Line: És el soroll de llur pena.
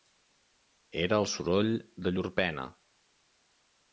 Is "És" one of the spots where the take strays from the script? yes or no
yes